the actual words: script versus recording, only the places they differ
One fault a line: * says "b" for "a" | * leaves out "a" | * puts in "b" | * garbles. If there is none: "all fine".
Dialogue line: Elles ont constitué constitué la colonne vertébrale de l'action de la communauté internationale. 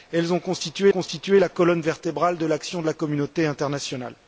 all fine